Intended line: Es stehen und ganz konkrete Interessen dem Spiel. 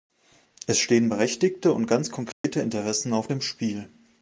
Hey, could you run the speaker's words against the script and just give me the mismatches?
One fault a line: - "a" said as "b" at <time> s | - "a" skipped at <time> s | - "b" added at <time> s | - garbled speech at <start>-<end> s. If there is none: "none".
- "berechtigte" added at 1.1 s
- "auf" added at 3.1 s